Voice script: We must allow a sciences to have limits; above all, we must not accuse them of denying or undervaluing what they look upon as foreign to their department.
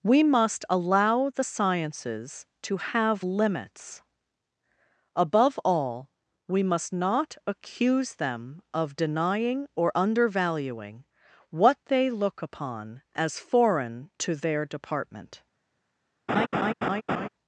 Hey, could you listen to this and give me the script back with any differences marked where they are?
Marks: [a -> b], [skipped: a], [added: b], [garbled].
We must allow [a -> the] sciences to have limits; above all, we must not accuse them of denying or undervaluing what they look upon as foreign to their department.